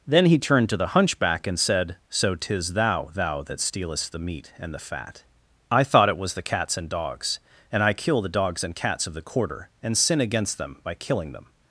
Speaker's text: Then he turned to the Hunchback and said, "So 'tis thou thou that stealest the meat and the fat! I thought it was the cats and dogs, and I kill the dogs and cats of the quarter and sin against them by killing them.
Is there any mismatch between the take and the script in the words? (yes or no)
no